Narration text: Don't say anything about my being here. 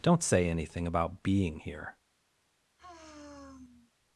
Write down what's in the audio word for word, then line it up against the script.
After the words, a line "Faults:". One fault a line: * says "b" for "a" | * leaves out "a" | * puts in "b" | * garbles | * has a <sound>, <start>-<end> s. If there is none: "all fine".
Don't say anything about being here.
Faults:
* leaves out "my"
* has a sigh, 2.8-3.9 s